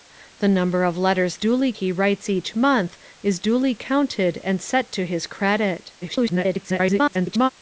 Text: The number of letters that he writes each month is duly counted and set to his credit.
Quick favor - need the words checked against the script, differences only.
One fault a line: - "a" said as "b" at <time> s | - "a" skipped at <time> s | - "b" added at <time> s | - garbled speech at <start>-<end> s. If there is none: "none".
- "that" said as "duly" at 1.4 s
- garbled speech at 6.0-7.5 s